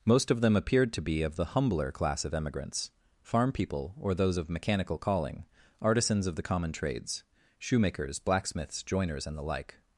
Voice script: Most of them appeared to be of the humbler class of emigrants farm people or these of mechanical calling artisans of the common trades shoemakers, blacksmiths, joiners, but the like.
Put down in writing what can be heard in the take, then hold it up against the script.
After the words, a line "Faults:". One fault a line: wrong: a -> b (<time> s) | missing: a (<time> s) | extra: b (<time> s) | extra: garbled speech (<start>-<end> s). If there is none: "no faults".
Most of them appeared to be of the humbler class of emigrants farm people or those of mechanical calling artisans of the common trades shoemakers, blacksmiths, joiners, and the like.
Faults:
wrong: these -> those (4.2 s)
wrong: but -> and (9.3 s)